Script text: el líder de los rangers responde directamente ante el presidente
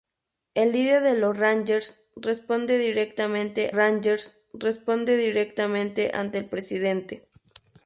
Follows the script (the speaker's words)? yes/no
no